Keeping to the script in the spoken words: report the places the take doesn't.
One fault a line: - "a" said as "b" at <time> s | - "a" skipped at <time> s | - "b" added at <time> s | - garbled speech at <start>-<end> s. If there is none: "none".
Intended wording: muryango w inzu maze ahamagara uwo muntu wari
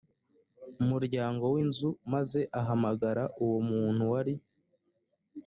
none